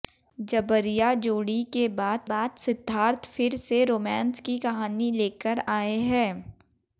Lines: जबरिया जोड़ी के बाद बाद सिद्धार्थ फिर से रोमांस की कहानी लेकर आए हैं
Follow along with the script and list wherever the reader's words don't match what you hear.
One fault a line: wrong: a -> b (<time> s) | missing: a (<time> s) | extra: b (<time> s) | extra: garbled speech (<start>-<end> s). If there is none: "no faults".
no faults